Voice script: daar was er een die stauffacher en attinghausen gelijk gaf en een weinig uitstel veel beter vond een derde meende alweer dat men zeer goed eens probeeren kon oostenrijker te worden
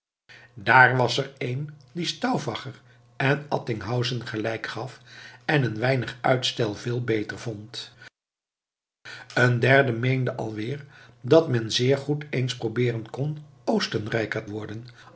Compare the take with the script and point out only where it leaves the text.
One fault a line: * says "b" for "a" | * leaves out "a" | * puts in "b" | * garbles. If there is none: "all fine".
* leaves out "te"